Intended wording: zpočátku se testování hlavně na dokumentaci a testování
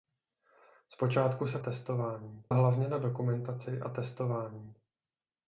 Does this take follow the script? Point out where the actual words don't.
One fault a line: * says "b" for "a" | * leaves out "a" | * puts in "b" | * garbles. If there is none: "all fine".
all fine